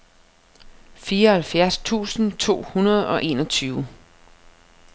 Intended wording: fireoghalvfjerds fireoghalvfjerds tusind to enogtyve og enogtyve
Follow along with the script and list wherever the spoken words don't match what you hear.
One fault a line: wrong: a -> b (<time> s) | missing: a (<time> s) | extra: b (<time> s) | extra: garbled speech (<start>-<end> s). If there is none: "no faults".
missing: fireoghalvfjerds (1.8 s)
wrong: enogtyve -> hundrede (2.7 s)